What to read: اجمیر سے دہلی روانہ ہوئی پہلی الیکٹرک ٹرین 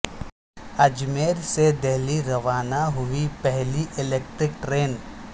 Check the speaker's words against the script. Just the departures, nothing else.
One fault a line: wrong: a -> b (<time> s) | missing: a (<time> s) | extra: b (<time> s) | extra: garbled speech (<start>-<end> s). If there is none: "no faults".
no faults